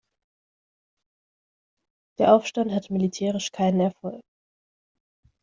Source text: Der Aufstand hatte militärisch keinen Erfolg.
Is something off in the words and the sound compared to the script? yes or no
no